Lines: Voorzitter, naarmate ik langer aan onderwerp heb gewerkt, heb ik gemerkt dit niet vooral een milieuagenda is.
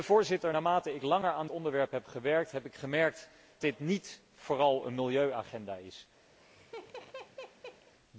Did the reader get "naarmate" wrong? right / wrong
right